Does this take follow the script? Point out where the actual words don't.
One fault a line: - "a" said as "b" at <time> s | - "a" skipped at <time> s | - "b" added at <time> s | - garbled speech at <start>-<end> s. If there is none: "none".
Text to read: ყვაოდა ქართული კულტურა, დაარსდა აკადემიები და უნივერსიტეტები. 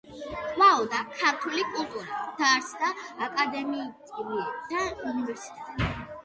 none